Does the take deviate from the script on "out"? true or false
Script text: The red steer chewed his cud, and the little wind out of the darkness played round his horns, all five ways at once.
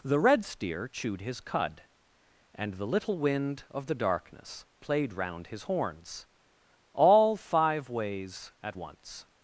true